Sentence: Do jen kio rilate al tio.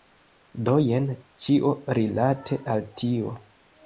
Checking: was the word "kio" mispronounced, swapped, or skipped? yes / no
yes